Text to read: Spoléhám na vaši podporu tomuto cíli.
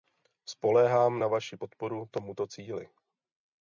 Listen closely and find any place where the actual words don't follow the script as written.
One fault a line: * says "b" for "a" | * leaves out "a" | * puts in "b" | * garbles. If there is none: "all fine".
all fine